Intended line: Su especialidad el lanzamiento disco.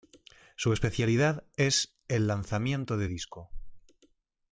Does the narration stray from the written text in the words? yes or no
yes